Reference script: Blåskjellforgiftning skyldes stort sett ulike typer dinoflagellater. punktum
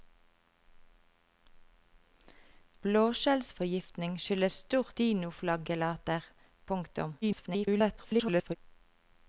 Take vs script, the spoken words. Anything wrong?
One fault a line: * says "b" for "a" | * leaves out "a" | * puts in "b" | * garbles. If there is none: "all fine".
* leaves out "sett ulike typer"
* garbles